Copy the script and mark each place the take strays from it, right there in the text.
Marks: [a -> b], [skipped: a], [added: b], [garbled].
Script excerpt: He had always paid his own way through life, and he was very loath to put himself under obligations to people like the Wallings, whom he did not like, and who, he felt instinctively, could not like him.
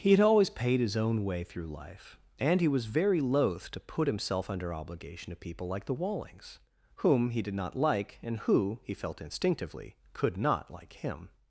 He had always paid his own way through life, and he was very loath to put himself under [obligations -> obligation] to people like the Wallings, whom he did not like, and who, he felt instinctively, could not like him.